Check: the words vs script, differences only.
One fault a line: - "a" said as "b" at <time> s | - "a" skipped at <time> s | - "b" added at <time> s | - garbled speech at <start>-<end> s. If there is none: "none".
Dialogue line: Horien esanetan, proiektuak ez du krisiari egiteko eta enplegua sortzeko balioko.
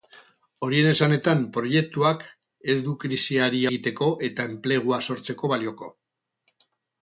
none